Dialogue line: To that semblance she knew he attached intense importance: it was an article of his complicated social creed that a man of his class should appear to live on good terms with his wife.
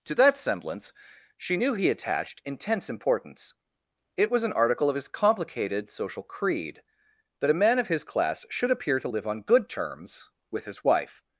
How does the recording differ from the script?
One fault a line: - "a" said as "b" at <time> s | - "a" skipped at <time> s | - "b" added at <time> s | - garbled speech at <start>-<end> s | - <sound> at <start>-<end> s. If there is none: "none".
none